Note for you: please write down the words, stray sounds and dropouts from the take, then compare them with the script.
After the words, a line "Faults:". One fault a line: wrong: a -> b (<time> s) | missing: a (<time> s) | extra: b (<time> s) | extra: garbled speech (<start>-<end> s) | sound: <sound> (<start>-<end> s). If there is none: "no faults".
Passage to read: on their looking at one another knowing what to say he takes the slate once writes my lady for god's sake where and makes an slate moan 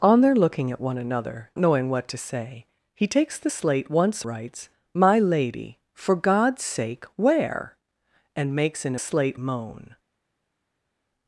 on their looking at one another knowing what to say he takes the slate once writes my lady for god's sake where and makes an slate moan
Faults:
no faults